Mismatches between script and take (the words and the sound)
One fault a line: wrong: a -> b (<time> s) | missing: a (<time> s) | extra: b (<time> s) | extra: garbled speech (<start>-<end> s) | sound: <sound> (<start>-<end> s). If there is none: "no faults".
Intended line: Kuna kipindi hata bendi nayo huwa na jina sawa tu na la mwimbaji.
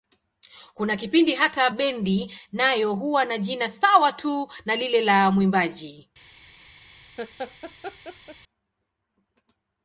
extra: lile (4.7 s)
sound: laugh (7.2-8.4 s)